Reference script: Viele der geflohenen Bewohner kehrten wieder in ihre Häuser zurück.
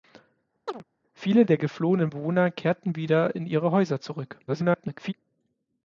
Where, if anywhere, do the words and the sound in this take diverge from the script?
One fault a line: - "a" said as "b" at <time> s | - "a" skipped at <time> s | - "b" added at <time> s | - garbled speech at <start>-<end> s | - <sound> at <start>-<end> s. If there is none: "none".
- chirp at 0.7-0.8 s
- garbled speech at 4.5-5.1 s